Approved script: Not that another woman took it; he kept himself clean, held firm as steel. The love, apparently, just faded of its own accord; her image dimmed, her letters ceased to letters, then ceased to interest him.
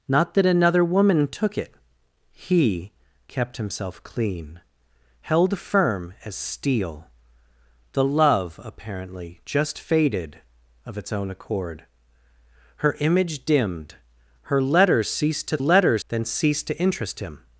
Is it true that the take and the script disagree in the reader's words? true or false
false